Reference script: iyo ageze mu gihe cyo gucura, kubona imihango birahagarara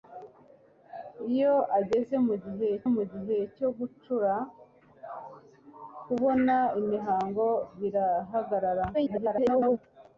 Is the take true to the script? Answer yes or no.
no